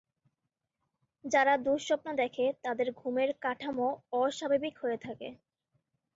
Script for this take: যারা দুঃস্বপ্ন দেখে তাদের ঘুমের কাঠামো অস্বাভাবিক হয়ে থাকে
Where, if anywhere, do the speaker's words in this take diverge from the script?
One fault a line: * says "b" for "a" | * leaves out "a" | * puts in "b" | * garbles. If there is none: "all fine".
all fine